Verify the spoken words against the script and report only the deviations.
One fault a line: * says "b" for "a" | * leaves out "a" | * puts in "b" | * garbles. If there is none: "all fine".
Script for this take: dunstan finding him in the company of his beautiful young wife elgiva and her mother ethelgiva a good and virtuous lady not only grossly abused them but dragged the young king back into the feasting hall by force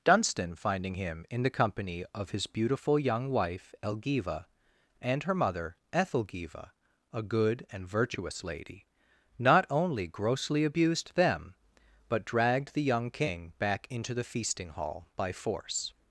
all fine